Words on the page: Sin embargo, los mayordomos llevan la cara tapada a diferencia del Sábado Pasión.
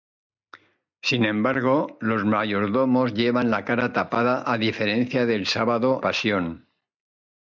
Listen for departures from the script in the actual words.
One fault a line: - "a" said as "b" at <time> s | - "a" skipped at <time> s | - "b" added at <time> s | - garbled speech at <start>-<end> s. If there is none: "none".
none